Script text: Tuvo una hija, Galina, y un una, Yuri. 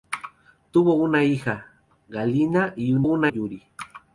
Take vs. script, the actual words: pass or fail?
pass